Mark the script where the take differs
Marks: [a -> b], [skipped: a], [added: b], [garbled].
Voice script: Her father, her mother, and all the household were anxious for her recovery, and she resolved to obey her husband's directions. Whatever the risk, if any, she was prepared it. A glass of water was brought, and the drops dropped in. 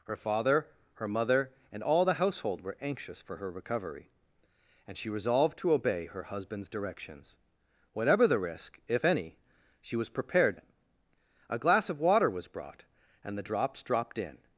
Her father, her mother, and all the household were anxious for her recovery, and she resolved to obey her husband's directions. Whatever the risk, if any, she was prepared it. A glass of water was brought, and the drops dropped in.